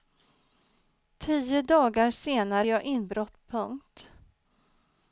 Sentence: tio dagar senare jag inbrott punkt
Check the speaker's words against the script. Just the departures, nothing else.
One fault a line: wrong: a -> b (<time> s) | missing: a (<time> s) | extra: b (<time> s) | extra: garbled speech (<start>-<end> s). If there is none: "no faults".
no faults